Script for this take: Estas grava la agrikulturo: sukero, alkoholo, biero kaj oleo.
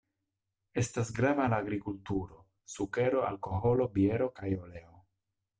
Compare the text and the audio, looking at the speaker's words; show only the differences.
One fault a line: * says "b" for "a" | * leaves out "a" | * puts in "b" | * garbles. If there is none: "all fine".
all fine